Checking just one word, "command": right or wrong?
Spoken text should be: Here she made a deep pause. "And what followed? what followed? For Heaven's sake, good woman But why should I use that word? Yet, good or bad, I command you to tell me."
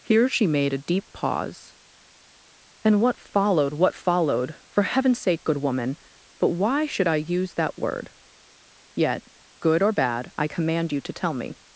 right